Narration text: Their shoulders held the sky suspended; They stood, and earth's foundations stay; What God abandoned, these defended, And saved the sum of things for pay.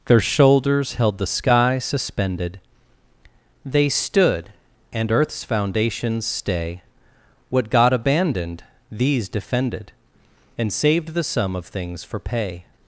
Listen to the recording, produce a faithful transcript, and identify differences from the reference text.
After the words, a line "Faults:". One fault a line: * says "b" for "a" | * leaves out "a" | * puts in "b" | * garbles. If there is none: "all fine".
Their shoulders held the sky suspended; They stood, and earth's foundations stay; What God abandoned, these defended, And saved the sum of things for pay.
Faults:
all fine